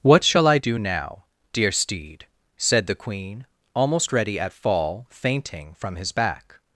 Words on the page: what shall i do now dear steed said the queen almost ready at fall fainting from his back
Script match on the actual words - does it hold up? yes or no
yes